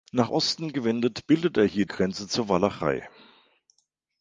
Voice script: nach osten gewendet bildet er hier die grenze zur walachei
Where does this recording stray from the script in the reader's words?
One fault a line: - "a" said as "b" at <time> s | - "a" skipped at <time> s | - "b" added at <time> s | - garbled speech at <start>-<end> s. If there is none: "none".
- "die" skipped at 1.9 s